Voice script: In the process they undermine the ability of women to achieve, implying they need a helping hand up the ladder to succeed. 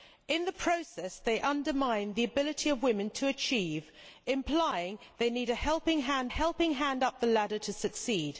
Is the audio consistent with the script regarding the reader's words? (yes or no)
no